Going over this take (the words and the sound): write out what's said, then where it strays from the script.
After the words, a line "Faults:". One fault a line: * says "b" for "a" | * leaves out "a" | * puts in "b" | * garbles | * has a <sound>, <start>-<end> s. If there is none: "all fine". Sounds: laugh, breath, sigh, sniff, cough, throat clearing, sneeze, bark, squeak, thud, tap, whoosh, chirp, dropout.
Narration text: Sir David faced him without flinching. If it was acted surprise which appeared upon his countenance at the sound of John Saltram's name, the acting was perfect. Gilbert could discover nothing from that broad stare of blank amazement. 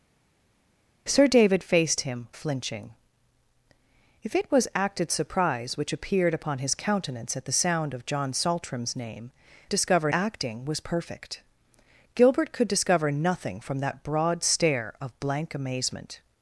Sir David faced him flinching. If it was acted surprise which appeared upon his countenance at the sound of John Saltram's name, discover acting was perfect. Gilbert could discover nothing from that broad stare of blank amazement.
Faults:
* leaves out "without"
* says "discover" for "the"